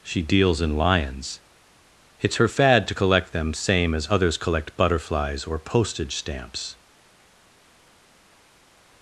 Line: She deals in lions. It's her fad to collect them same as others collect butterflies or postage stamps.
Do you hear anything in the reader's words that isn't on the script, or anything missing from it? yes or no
no